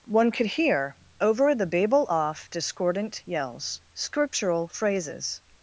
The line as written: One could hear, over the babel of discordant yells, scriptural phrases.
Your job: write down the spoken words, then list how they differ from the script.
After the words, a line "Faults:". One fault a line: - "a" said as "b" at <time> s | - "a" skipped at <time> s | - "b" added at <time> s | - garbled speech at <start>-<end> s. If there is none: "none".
One could hear, over the babel off discordant yells, scriptural phrases.
Faults:
- "of" said as "off" at 2.1 s